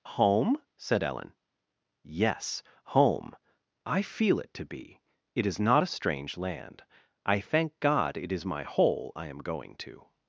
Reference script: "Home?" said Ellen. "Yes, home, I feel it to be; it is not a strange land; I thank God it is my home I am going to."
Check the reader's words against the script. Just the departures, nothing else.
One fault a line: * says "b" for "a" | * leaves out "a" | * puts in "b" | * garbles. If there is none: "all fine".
* says "hole" for "home"